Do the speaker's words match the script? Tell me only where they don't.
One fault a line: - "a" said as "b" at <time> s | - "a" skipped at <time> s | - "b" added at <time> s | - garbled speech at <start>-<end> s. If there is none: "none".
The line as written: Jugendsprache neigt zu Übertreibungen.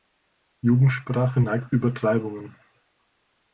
- "zu" skipped at 1.7 s